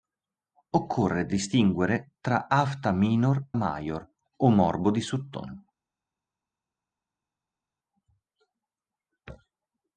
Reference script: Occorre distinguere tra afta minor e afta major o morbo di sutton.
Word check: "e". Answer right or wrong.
wrong